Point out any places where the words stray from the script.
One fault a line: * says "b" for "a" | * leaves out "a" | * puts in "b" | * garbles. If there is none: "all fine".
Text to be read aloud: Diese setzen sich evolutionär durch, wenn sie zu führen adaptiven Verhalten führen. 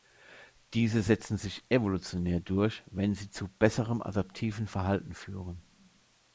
* says "besserem" for "führen"